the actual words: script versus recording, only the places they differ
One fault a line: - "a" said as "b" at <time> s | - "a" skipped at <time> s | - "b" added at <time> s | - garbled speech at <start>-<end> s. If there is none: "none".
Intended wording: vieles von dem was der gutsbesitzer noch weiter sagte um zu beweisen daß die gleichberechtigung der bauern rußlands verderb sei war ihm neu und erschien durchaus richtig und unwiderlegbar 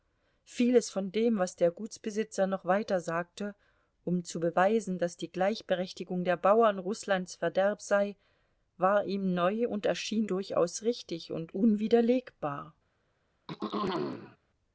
none